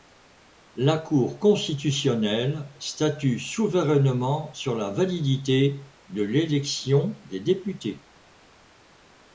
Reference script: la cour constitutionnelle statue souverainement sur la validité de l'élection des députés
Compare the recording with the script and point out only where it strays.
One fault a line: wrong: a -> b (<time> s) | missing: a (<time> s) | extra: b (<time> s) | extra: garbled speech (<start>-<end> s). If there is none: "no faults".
no faults